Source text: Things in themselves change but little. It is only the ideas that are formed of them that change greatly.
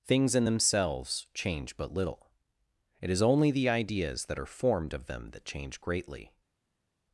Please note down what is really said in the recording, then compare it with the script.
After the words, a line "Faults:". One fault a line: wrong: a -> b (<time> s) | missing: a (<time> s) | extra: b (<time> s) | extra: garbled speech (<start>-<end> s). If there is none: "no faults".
Things in themselves change but little. It is only the ideas that are formed of them that change greatly.
Faults:
no faults